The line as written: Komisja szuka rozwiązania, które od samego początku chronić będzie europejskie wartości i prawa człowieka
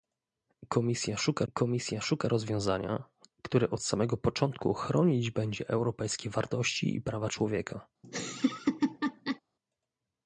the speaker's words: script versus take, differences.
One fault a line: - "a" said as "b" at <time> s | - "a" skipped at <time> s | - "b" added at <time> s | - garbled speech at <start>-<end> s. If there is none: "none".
- "komisja szuka" added at 1.5 s